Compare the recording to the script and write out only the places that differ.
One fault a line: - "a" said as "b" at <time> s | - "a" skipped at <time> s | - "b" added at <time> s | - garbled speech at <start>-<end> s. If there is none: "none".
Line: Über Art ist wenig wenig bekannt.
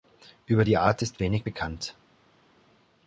- "die" added at 0.6 s
- "wenig" skipped at 1.5 s